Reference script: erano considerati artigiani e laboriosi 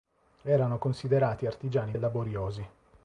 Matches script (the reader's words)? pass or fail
pass